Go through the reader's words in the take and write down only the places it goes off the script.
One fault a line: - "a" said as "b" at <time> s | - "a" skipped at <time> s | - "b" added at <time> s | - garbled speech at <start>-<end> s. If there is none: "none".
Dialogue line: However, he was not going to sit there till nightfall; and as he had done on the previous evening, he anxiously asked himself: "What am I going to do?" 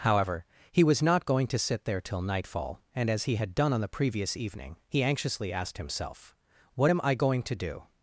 none